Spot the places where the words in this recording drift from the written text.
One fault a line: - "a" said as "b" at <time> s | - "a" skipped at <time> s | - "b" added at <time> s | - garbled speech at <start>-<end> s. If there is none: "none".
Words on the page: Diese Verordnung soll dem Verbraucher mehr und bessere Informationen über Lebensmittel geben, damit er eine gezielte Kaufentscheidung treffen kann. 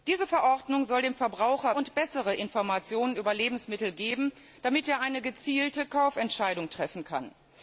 - "mehr" skipped at 1.8 s